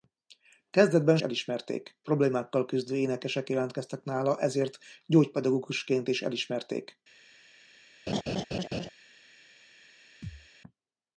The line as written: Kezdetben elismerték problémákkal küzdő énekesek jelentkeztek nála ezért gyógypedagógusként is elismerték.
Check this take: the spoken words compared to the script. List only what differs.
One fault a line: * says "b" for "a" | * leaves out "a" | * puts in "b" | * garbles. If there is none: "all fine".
all fine